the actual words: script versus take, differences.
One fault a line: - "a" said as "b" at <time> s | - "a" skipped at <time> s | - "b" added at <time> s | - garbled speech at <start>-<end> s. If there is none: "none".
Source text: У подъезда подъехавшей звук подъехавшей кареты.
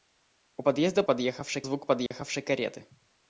none